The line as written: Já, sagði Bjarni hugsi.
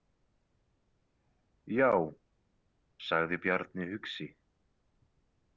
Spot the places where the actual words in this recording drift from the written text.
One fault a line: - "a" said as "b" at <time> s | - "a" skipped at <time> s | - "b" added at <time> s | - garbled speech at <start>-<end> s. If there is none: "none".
none